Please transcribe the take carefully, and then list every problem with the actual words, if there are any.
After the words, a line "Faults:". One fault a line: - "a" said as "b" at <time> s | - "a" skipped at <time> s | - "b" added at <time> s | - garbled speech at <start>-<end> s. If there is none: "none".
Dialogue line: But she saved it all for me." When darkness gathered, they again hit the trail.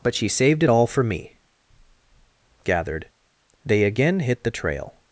But she saved it all for me." Gathered, they again hit the trail.
Faults:
- "When darkness" skipped at 1.3 s